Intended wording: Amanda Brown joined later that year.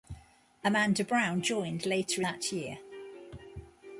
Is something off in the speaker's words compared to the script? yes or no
no